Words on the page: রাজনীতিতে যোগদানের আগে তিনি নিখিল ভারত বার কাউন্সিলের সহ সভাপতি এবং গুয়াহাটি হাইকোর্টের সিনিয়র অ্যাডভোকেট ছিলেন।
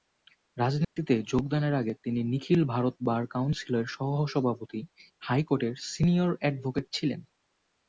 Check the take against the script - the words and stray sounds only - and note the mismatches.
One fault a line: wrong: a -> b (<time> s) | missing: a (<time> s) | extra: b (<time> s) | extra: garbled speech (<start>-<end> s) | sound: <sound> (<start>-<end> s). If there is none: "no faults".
sound: dropout (0.8-1.0 s)
missing: এবং গুয়াহাটি (4.8 s)